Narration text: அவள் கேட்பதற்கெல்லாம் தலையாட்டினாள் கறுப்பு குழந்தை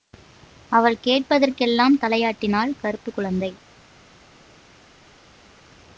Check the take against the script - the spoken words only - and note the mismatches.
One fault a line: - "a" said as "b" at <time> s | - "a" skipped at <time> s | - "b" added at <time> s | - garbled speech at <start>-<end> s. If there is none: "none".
none